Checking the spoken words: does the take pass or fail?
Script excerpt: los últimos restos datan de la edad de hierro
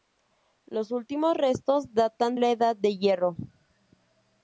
fail